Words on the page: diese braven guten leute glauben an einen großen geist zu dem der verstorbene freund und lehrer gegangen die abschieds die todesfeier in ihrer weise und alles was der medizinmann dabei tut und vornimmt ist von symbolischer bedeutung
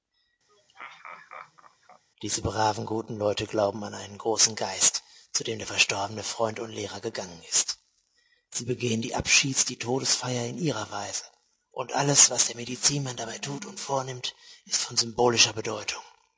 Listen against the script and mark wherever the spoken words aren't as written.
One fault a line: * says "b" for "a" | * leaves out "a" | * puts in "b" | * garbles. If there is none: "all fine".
* puts in "ist sie begehen"